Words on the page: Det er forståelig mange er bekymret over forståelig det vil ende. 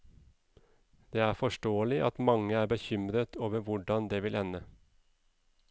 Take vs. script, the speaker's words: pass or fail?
fail